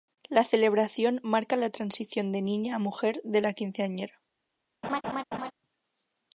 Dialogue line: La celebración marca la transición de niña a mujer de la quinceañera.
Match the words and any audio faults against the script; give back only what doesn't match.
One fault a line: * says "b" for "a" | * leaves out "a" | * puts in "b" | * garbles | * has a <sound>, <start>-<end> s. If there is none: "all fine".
* has a laugh, 4.8-5.5 s